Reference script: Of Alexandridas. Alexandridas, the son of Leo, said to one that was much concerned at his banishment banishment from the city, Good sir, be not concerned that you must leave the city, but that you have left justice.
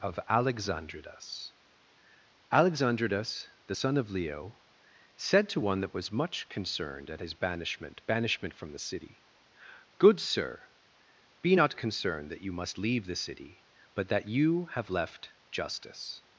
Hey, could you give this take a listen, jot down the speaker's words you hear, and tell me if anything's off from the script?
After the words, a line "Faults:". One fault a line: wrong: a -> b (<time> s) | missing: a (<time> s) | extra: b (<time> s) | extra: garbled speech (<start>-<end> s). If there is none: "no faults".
Of Alexandridas. Alexandridas, the son of Leo, said to one that was much concerned at his banishment banishment from the city, Good sir, be not concerned that you must leave the city, but that you have left justice.
Faults:
no faults